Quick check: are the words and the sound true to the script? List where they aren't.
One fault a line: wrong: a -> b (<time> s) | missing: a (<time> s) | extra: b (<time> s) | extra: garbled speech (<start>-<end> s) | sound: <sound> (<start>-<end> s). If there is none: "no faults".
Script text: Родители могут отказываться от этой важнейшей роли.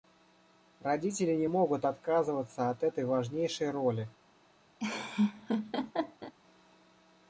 extra: не (1.4 s)
sound: laugh (4.8-6.3 s)